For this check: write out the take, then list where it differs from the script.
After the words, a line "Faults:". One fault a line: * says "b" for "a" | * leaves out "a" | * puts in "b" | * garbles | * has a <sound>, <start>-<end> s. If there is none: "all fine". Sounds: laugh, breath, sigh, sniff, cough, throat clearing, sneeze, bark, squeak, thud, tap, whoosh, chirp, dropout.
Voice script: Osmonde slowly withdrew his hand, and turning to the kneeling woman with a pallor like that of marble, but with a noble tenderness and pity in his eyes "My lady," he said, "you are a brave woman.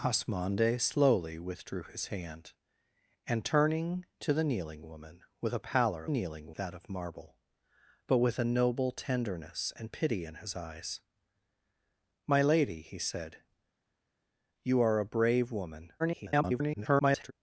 Osmonde slowly withdrew his hand, and turning to the kneeling woman with a pallor kneeling that of marble, but with a noble tenderness and pity in his eyes "My lady," he said, "you are a brave woman. [garbled]
Faults:
* says "kneeling" for "like"
* garbles